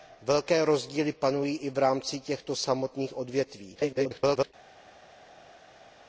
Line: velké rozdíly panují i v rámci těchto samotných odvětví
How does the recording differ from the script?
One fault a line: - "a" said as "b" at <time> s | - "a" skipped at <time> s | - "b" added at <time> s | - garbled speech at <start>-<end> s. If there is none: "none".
- garbled speech at 3.7-4.5 s